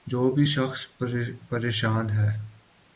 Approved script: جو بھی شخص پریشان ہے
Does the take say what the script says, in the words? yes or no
yes